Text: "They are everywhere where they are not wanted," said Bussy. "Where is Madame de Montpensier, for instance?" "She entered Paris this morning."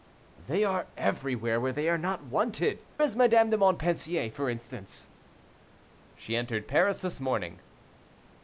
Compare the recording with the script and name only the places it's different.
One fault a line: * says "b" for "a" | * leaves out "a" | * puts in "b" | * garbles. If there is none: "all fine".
* leaves out "said Bussy Where"